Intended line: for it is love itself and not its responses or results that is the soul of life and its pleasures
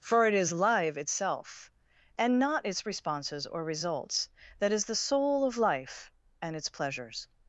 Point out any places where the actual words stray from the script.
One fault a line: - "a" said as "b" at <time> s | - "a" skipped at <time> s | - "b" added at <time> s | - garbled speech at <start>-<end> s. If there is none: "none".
- "love" said as "live" at 0.5 s